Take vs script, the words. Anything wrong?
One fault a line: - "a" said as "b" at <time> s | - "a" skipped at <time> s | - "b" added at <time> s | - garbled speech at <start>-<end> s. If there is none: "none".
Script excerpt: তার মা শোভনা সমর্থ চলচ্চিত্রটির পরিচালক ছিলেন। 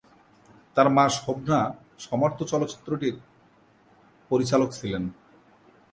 none